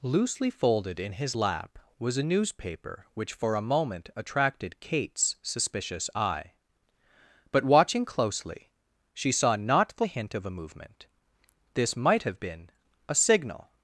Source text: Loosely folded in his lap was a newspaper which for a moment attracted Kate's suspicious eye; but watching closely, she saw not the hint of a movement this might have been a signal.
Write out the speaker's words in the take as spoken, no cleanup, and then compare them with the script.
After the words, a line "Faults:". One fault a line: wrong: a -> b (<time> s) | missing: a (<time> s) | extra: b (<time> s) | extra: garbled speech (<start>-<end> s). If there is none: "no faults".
Loosely folded in his lap was a newspaper which for a moment attracted Kate's suspicious eye; but watching closely, she saw not the hint of a movement this might have been a signal.
Faults:
no faults